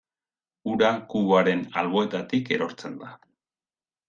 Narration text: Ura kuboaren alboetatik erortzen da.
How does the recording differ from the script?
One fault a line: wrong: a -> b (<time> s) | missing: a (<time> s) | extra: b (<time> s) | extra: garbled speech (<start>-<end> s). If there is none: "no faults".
no faults